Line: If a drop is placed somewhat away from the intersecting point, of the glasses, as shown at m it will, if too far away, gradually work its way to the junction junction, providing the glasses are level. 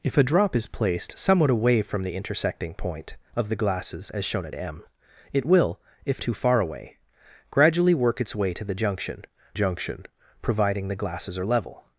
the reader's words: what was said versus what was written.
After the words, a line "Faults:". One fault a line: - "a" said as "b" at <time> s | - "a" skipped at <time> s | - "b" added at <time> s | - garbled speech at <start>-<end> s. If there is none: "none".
If a drop is placed somewhat away from the intersecting point, of the glasses, as shown at m it will, if too far away, gradually work its way to the junction junction, providing the glasses are level.
Faults:
none